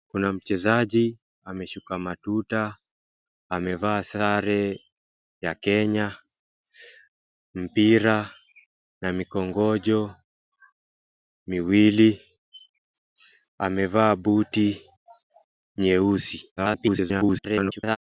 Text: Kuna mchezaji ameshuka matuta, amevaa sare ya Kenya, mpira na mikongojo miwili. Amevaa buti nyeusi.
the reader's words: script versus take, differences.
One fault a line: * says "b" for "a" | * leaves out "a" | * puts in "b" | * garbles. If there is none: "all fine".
* garbles